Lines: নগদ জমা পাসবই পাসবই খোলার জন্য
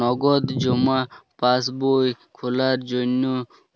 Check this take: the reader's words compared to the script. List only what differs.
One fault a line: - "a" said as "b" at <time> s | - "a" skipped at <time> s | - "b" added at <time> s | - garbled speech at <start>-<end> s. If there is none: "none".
- "পাসবই" skipped at 2.1 s